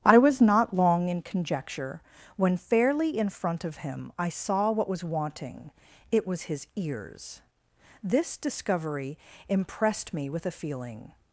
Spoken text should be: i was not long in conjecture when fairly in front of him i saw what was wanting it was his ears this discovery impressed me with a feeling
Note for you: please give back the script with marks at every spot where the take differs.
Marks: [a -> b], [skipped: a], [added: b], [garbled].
i was not long in conjecture when fairly in front of him i saw what was wanting it was his ears this discovery impressed me with a feeling